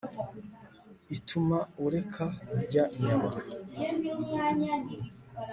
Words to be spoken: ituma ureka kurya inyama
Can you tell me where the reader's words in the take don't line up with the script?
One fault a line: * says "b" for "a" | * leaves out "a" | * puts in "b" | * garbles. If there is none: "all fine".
all fine